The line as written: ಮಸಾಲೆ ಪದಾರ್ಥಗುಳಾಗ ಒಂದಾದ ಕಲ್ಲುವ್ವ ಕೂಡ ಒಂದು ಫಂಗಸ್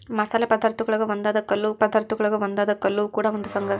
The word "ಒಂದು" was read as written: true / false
true